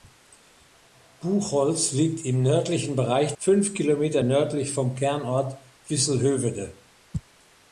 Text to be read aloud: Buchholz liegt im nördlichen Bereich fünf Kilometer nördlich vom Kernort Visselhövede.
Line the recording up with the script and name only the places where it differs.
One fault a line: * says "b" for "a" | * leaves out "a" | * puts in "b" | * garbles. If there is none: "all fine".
all fine